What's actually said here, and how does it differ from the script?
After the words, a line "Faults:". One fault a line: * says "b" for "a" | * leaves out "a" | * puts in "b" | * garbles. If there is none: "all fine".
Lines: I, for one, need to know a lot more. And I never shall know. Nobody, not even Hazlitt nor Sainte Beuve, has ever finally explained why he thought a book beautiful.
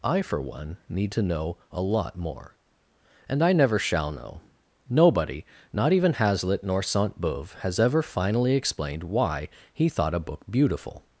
I, for one, need to know a lot more. And I never shall know. Nobody, not even Hazlitt nor Sainte Beuve, has ever finally explained why he thought a book beautiful.
Faults:
all fine